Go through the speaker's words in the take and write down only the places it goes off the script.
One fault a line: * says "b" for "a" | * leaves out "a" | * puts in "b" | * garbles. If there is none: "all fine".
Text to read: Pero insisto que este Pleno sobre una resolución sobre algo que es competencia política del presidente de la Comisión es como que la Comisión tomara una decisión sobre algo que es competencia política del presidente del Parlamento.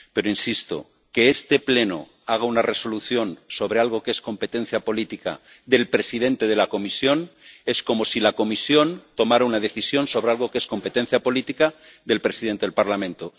* says "haga" for "sobre"
* says "si" for "que"